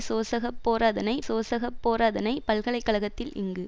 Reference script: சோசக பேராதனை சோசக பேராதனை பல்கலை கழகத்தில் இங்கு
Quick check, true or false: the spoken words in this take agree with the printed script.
true